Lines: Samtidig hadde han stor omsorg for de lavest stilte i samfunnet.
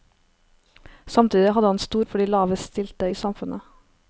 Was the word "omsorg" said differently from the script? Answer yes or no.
yes